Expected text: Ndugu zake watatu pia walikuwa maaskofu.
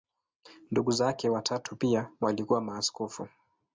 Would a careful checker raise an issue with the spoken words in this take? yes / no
no